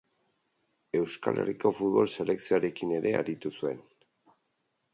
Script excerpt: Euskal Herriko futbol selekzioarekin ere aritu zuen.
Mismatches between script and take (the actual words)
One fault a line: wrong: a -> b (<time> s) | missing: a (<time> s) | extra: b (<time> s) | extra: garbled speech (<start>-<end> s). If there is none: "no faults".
no faults